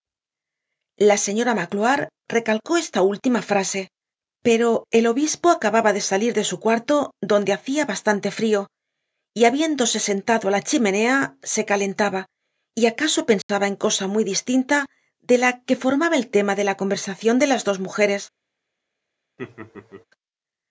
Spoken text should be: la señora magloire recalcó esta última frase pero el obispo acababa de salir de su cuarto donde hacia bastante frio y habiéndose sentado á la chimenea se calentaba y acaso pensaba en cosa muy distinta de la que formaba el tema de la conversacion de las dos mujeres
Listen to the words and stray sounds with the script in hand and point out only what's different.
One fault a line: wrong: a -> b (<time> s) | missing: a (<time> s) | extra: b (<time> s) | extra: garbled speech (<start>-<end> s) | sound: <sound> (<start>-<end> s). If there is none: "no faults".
sound: dropout (13.4-13.5 s)
sound: laugh (19.4-20.1 s)